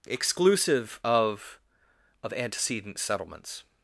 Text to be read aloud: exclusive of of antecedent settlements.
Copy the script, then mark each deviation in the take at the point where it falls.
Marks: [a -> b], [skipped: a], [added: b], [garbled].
exclusive of of antecedent settlements.